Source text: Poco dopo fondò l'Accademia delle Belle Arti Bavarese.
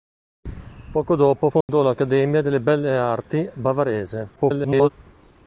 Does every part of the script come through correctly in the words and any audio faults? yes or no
no